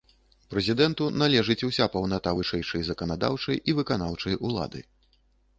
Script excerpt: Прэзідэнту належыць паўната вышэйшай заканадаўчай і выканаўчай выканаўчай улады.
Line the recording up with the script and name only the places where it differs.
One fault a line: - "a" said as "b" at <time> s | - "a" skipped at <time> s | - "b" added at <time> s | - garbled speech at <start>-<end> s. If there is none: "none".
- "уся" added at 1.7 s
- "выканаўчай" skipped at 4.3 s